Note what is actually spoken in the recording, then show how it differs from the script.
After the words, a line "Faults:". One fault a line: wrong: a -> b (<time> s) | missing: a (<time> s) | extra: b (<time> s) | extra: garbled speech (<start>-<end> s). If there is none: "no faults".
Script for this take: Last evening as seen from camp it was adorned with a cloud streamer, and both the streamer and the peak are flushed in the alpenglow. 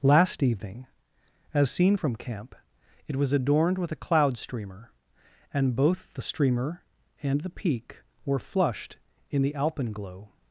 Last evening as seen from camp it was adorned with a cloud streamer, and both the streamer and the peak were flushed in the alpenglow.
Faults:
wrong: are -> were (8.2 s)